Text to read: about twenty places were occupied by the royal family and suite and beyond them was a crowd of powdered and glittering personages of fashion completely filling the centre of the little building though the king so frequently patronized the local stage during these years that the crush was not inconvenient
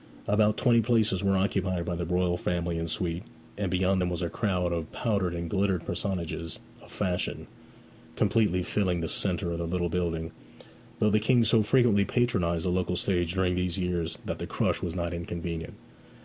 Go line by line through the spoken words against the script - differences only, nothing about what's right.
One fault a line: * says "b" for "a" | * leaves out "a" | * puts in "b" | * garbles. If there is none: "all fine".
all fine